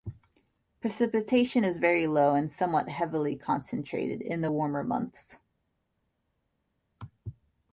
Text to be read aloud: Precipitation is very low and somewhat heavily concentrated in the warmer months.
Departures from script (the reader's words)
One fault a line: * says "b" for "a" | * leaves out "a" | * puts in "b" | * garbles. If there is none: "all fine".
all fine